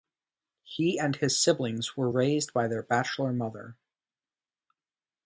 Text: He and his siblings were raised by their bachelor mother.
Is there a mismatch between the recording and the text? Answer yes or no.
no